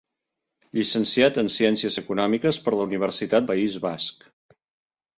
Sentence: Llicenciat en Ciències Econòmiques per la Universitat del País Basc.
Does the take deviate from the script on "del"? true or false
true